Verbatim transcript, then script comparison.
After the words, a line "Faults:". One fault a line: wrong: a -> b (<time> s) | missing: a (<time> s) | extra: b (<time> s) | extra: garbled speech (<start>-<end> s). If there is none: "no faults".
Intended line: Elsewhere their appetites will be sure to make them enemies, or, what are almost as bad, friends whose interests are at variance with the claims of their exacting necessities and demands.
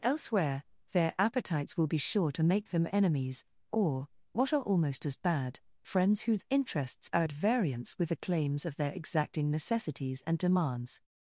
Elsewhere their appetites will be sure to make them enemies, or, what are almost as bad, friends whose interests are at variance with the claims of their exacting necessities and demands.
Faults:
no faults